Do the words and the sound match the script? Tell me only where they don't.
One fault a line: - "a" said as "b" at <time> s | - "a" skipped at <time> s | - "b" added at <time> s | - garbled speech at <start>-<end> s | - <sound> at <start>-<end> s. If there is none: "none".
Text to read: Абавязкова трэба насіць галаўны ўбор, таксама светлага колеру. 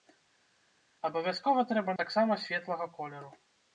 - "насіць галаўны ўбор" skipped at 2.0 s